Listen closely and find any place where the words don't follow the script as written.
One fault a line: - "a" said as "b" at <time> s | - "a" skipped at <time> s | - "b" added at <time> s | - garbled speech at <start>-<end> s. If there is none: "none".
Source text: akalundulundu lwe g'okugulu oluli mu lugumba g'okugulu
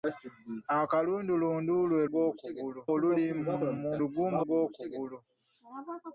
none